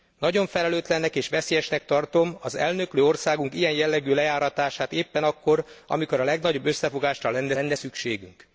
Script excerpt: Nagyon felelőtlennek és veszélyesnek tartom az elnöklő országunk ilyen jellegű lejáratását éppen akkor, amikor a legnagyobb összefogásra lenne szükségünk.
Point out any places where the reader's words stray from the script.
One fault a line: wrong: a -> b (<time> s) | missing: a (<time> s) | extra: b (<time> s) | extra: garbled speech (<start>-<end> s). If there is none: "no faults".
extra: lenne (7.5 s)